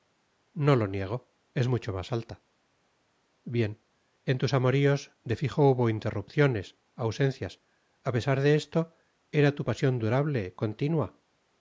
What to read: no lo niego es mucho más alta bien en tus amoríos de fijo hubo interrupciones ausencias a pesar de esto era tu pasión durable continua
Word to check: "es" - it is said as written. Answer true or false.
true